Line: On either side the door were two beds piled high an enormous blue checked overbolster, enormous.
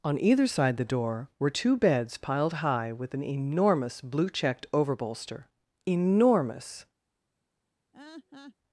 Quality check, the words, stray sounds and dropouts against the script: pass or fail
fail